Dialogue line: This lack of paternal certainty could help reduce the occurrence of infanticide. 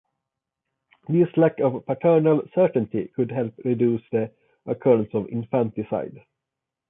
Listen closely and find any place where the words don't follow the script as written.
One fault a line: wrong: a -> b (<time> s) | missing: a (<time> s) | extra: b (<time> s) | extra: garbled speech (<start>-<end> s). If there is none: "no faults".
no faults